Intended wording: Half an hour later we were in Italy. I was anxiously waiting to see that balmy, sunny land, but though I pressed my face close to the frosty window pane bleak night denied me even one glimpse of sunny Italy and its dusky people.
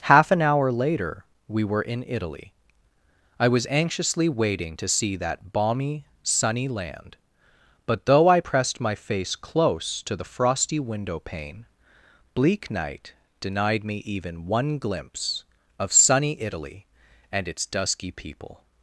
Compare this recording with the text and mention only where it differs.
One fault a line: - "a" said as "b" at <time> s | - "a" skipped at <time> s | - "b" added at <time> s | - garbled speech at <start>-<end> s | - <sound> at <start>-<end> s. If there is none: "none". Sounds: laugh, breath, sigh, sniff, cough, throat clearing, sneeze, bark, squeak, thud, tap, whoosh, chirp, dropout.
none